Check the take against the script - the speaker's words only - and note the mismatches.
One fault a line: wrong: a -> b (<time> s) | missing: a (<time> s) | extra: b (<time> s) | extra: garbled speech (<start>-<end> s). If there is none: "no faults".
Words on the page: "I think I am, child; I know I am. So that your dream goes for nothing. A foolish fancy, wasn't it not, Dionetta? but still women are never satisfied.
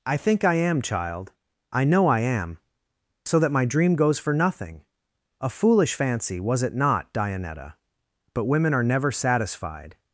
wrong: your -> my (3.5 s)
wrong: wasn't -> was (6.4 s)
missing: still (8.4 s)